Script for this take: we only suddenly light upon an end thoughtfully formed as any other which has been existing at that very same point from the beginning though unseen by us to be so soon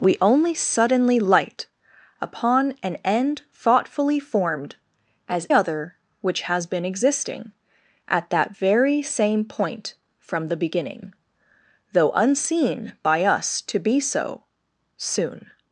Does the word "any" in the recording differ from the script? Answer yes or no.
yes